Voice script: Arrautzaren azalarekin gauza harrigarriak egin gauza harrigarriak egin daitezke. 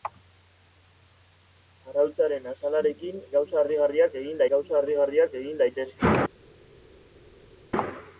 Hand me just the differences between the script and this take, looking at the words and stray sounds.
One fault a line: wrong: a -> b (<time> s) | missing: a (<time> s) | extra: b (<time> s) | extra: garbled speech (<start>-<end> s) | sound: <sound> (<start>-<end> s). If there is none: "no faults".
no faults